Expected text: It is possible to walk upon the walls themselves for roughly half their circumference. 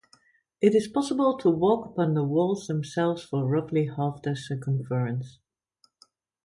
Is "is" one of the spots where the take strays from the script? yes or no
no